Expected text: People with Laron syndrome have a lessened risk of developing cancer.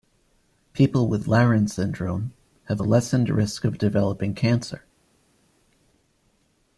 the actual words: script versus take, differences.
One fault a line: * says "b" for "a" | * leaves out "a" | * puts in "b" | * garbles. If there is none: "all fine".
all fine